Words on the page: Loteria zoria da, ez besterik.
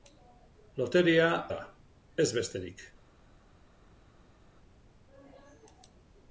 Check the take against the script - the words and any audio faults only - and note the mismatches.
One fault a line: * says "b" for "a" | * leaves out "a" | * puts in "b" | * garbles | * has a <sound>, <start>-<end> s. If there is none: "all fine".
* leaves out "zoria"